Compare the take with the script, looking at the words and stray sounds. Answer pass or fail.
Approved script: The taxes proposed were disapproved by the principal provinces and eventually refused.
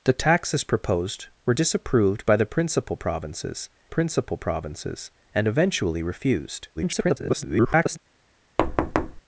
fail